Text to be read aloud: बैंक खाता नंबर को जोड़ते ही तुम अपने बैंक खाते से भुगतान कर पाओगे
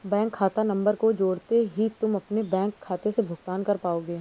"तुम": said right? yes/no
yes